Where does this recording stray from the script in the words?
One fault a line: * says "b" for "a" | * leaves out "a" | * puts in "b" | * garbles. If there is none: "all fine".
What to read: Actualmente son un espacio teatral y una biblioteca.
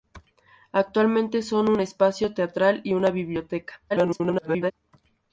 * garbles